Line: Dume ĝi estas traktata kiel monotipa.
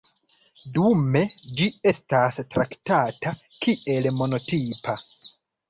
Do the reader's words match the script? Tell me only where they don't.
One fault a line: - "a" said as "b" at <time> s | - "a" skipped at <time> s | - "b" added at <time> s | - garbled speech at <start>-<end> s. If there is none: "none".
none